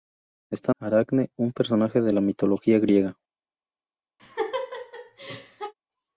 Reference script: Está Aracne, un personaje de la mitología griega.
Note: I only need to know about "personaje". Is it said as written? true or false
true